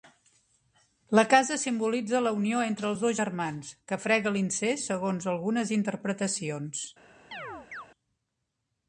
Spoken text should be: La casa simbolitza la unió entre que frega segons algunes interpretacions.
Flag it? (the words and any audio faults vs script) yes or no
yes